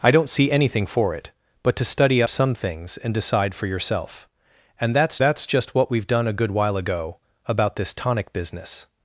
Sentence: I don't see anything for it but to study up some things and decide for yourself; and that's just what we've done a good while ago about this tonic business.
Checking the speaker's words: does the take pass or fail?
fail